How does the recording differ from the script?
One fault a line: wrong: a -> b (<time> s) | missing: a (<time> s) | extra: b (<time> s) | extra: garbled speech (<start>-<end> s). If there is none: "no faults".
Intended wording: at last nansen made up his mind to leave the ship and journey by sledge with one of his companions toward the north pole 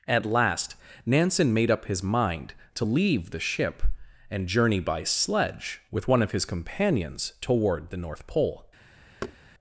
no faults